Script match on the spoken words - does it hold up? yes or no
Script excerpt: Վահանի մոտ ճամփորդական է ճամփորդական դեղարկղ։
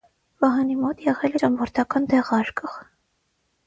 no